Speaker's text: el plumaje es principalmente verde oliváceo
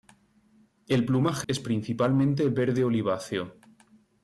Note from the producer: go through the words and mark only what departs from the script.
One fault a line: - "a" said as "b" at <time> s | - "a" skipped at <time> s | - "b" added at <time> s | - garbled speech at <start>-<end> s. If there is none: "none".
none